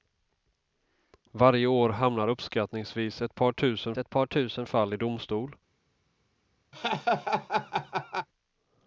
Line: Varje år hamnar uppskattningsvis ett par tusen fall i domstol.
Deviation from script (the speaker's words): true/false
true